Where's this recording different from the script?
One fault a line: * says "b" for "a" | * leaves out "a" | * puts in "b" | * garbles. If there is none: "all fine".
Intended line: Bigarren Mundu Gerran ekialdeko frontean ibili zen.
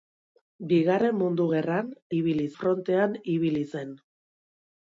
* says "ibili" for "ekialdeko"